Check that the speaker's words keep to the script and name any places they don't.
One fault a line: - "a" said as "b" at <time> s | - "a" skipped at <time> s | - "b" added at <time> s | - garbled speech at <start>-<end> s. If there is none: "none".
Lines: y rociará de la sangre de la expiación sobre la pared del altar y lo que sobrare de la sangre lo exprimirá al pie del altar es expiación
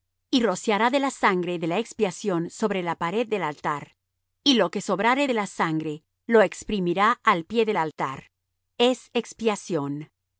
none